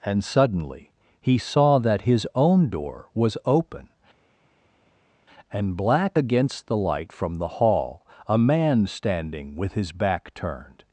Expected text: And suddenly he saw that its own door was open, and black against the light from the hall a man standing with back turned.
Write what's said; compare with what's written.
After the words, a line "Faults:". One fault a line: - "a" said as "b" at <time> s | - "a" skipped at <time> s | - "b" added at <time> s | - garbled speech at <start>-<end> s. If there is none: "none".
And suddenly he saw that his own door was open, and black against the light from the hall a man standing with his back turned.
Faults:
- "its" said as "his" at 2.0 s
- "his" added at 9.7 s